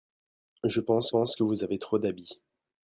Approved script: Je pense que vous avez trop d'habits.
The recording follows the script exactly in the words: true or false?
false